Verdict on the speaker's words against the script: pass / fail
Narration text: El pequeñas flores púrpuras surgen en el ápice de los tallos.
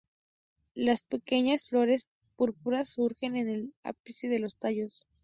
fail